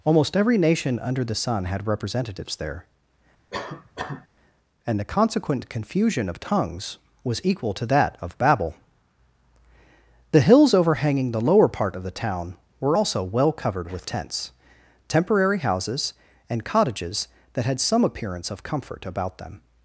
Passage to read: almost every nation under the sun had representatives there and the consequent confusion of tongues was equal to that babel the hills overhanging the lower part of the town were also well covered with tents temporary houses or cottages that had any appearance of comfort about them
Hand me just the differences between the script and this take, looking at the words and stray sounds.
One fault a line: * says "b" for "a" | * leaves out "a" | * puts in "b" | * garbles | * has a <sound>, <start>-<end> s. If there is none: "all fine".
* has a cough, 3.5-4.3 s
* puts in "of"
* says "and" for "or"
* says "some" for "any"